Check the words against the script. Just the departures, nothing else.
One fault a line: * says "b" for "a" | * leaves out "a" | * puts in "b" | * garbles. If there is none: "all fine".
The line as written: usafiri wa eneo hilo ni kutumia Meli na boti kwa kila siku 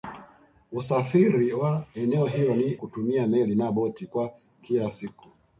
all fine